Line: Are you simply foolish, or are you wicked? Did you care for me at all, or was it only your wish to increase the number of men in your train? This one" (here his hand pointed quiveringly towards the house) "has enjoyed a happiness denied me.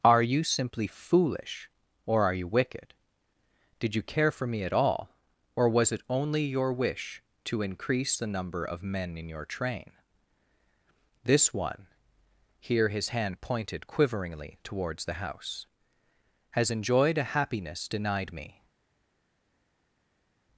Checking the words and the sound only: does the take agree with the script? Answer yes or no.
yes